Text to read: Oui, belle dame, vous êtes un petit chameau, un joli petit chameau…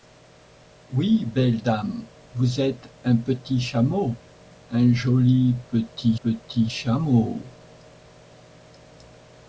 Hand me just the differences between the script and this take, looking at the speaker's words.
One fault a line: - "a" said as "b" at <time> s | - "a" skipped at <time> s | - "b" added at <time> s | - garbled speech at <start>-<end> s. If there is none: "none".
- "petit" added at 6.2 s